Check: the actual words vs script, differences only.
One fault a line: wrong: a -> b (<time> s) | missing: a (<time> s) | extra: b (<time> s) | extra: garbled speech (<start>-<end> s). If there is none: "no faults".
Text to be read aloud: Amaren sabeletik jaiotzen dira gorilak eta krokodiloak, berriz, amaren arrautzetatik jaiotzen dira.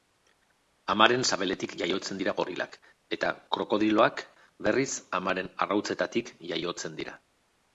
no faults